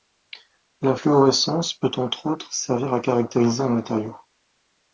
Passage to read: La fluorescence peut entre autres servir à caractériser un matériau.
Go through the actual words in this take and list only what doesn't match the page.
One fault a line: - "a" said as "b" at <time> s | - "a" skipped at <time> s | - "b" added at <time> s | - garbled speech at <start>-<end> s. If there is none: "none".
none